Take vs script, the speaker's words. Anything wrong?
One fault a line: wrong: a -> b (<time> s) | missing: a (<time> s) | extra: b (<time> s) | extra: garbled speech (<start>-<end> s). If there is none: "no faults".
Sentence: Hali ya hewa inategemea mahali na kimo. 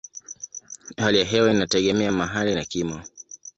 no faults